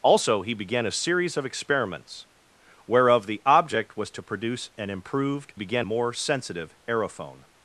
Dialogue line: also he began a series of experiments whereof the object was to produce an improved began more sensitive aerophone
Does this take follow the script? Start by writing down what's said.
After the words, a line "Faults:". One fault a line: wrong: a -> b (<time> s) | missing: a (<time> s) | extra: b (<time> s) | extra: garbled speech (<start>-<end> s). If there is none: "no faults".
also he began a series of experiments whereof the object was to produce an improved began more sensitive aerophone
Faults:
no faults